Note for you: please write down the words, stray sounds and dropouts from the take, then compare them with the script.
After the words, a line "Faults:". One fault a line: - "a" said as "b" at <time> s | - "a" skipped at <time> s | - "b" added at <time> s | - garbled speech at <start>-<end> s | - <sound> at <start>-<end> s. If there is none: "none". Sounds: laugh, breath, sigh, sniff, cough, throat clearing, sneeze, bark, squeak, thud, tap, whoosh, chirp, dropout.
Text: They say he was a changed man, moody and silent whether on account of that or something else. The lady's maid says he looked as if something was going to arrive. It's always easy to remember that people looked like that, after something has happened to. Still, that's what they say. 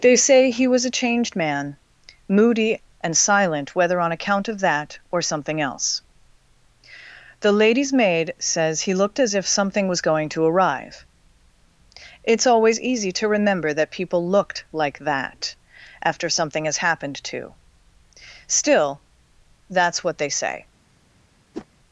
They say he was a changed man, moody and silent whether on account of that or something else. The lady's maid says he looked as if something was going to arrive. It's always easy to remember that people looked like that, after something has happened to. Still, that's what they say.
Faults:
- whoosh at 21.5-21.7 s